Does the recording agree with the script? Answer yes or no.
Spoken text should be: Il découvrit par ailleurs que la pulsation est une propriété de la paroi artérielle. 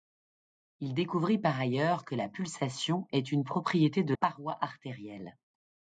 no